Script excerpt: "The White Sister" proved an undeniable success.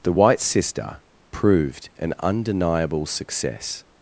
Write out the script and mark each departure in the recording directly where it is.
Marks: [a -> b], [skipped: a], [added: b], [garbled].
"The White Sister" proved an undeniable success.